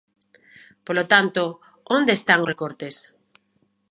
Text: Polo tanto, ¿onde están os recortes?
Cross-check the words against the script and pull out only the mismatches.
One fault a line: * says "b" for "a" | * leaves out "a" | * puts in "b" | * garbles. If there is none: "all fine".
all fine